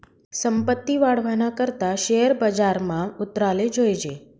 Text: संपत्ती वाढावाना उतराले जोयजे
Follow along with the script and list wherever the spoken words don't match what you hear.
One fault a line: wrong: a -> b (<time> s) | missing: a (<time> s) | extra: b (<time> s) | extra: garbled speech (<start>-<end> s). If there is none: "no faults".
extra: करता शेअर बजारमा (1.6 s)